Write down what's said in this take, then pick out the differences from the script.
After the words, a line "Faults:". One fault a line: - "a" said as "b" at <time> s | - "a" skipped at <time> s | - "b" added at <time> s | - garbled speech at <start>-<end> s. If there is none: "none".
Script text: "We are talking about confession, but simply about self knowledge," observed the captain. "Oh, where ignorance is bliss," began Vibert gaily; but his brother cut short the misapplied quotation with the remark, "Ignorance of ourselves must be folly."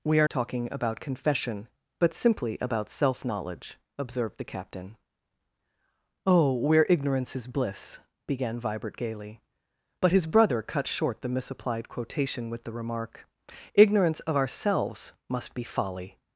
"We are talking about confession, but simply about self knowledge," observed the captain. "Oh, where ignorance is bliss," began Vibert gaily; but his brother cut short the misapplied quotation with the remark, "Ignorance of ourselves must be folly."
Faults:
none